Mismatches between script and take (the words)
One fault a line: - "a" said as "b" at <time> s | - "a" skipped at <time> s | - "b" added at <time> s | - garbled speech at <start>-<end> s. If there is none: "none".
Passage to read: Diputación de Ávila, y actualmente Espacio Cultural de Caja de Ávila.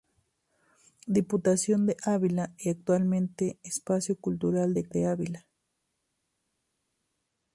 - "Caja" skipped at 4.9 s